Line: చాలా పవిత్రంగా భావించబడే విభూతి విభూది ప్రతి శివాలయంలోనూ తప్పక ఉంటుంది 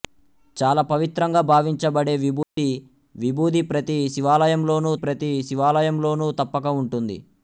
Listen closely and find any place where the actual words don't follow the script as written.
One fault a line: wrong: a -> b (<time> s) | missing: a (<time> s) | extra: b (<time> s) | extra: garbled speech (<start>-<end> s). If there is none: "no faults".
extra: ప్రతి శివాలయంలోనూ (5.0 s)